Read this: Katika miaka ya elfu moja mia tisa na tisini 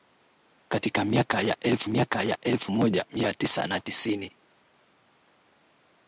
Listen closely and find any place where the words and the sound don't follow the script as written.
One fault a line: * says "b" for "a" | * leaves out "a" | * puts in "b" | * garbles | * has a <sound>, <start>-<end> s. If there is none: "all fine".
* puts in "miaka ya elfu"